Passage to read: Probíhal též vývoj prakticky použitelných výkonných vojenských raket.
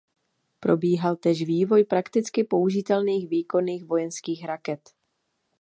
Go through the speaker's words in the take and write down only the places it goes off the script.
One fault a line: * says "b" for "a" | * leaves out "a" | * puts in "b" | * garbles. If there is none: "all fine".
all fine